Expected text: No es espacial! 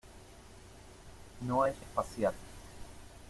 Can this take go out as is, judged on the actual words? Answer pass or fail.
pass